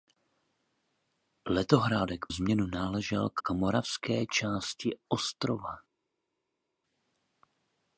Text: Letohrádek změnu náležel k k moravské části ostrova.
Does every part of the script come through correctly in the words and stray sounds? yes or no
yes